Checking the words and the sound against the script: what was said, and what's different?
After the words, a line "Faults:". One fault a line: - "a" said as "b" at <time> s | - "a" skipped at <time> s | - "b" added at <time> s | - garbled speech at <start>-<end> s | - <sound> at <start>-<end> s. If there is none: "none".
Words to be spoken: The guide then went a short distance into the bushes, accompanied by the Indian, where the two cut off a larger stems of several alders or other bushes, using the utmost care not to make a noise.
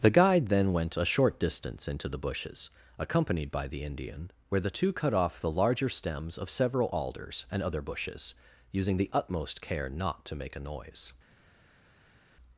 The guide then went a short distance into the bushes, accompanied by the Indian, where the two cut off the larger stems of several alders and other bushes, using the utmost care not to make a noise.
Faults:
- "a" said as "the" at 5.4 s
- "or" said as "and" at 7.5 s